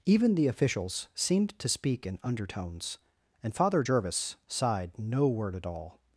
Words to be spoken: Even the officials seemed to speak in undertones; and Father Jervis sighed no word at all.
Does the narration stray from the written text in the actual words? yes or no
no